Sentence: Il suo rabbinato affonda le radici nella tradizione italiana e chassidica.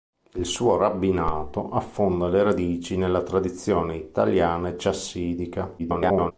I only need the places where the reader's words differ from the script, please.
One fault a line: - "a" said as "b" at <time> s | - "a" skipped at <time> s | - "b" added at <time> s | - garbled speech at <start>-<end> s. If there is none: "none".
- garbled speech at 5.8-6.3 s